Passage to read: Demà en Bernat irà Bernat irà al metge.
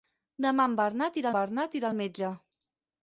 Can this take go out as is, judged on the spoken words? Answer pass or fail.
pass